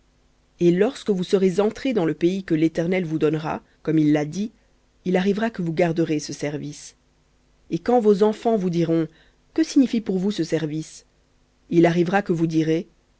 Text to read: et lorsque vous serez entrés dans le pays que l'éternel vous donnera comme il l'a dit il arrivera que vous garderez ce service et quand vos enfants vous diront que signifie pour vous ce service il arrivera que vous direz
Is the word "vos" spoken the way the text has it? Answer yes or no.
yes